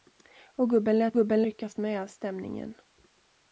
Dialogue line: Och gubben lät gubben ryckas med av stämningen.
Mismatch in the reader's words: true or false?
false